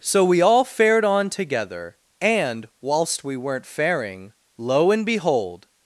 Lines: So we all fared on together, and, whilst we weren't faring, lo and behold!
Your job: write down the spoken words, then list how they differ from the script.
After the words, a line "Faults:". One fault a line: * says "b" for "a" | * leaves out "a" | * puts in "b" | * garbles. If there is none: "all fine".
So we all fared on together, and, whilst we weren't faring, lo and behold!
Faults:
all fine